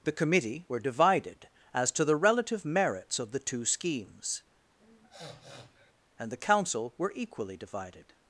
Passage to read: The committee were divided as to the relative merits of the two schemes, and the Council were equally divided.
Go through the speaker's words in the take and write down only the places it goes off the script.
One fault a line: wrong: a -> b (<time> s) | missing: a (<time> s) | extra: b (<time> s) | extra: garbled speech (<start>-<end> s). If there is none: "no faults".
no faults